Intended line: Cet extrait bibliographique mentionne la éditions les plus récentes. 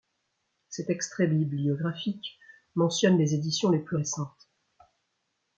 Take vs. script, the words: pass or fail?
fail